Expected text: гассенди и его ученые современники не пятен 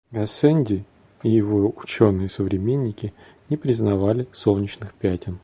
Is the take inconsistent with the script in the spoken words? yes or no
yes